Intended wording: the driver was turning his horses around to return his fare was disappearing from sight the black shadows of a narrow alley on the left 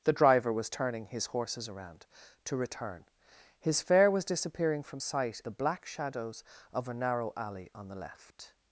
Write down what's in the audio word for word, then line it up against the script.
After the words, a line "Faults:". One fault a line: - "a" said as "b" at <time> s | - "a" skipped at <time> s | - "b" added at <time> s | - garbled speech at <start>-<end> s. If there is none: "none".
the driver was turning his horses around to return his fare was disappearing from sight the black shadows of a narrow alley on the left
Faults:
none